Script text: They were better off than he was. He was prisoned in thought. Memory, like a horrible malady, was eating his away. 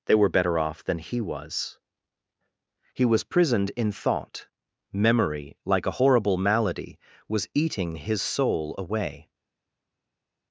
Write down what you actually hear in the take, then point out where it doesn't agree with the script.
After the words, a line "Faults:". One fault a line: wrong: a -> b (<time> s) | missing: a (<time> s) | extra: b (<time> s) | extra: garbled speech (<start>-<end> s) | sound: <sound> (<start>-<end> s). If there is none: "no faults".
They were better off than he was. He was prisoned in thought. Memory, like a horrible malady, was eating his soul away.
Faults:
extra: soul (8.2 s)